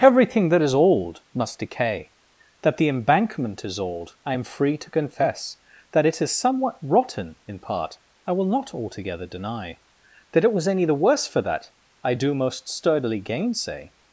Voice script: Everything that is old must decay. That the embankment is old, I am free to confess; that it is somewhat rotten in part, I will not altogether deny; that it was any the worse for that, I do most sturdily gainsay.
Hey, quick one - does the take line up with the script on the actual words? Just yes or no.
yes